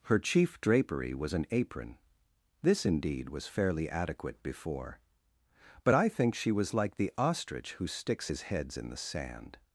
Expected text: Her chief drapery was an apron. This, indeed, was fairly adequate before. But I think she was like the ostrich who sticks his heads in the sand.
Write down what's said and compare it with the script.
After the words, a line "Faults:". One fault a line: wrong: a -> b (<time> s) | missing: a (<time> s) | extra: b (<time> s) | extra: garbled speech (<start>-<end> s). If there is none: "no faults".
Her chief drapery was an apron. This, indeed, was fairly adequate before. But I think she was like the ostrich who sticks his heads in the sand.
Faults:
no faults